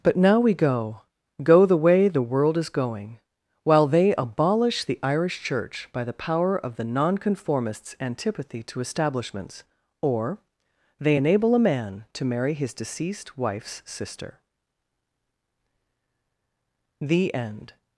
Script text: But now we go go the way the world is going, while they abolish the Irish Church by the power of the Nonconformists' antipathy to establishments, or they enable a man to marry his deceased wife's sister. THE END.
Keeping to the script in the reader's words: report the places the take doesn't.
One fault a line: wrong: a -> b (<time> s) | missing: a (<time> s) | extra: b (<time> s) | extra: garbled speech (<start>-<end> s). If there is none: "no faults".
no faults